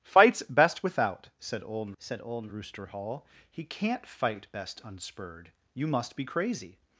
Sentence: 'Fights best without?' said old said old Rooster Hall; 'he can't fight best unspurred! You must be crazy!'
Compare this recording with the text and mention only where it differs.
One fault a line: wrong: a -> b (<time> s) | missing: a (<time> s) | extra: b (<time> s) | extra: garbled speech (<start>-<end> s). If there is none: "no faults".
no faults